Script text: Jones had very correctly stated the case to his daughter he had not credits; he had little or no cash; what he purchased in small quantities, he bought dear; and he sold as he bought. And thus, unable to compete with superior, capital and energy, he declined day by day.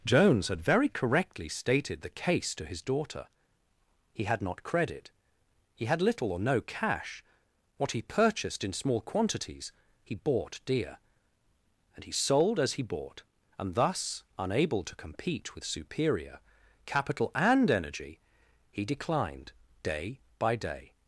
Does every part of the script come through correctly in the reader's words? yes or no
no